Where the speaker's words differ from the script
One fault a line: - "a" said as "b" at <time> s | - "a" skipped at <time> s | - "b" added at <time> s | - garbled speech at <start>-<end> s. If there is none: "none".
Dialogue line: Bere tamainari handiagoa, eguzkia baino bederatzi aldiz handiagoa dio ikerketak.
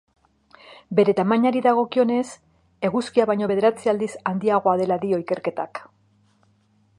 - "handiagoa" said as "dagokionez" at 1.7 s
- "dela" added at 4.8 s